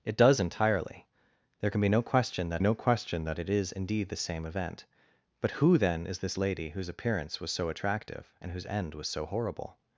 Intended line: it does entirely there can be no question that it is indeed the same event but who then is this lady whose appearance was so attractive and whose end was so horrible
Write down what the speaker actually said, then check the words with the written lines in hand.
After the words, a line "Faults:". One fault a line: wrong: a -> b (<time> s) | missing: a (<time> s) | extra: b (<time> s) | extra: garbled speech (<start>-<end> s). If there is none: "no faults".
it does entirely there can be no question that no question that it is indeed the same event but who then is this lady whose appearance was so attractive and whose end was so horrible
Faults:
extra: no question that (2.6 s)